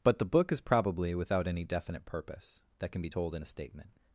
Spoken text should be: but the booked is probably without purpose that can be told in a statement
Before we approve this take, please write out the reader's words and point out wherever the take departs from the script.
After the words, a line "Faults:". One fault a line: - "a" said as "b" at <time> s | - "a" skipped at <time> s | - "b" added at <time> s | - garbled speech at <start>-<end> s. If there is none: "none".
but the book is probably without any definite purpose that can be told in a statement
Faults:
- "booked" said as "book" at 0.2 s
- "any definite" added at 1.5 s